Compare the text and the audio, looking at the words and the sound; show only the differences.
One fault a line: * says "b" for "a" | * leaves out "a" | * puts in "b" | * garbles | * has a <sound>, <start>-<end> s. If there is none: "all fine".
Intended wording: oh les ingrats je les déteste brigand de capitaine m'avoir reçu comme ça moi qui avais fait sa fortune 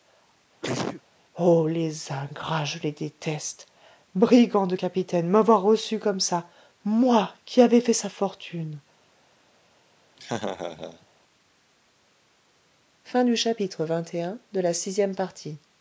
* has a sneeze, 0.6-1.0 s
* has a laugh, 10.2-11.1 s